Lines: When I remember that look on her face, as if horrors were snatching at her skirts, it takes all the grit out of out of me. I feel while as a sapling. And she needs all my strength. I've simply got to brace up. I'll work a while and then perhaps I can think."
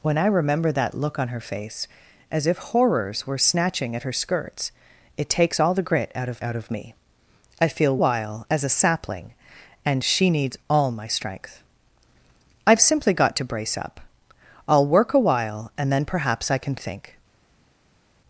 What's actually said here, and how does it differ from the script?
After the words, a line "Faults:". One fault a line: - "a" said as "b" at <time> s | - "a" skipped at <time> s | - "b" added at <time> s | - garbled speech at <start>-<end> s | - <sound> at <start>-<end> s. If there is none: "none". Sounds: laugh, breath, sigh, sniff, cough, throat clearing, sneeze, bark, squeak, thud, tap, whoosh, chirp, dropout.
When I remember that look on her face, as if horrors were snatching at her skirts, it takes all the grit out of out of me. I feel while as a sapling. And she needs all my strength. I've simply got to brace up. I'll work a while and then perhaps I can think."
Faults:
none